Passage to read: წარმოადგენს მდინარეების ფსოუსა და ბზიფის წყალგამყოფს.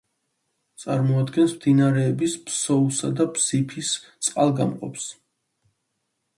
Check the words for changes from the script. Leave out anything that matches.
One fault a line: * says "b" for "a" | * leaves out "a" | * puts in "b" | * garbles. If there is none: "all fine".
all fine